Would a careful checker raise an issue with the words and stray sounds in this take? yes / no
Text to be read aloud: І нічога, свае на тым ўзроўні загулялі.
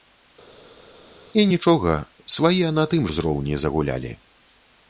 no